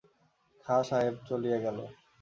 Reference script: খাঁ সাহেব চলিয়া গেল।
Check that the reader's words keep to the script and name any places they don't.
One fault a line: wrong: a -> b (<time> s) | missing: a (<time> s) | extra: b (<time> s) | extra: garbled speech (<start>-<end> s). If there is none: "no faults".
no faults